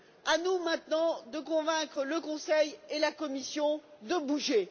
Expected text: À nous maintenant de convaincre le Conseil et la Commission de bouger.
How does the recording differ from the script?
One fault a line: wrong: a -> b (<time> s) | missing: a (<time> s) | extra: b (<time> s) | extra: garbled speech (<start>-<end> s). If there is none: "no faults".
no faults